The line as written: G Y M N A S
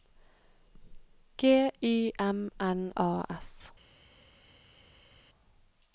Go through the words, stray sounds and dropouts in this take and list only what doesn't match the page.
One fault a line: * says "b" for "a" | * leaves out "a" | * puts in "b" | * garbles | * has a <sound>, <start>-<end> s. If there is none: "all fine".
all fine